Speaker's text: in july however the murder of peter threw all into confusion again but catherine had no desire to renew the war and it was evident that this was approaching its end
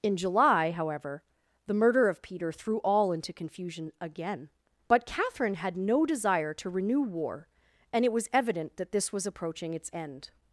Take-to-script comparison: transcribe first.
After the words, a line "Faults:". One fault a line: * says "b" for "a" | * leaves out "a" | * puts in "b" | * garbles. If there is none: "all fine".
in july however the murder of peter threw all into confusion again but catherine had no desire to renew war and it was evident that this was approaching its end
Faults:
* leaves out "the"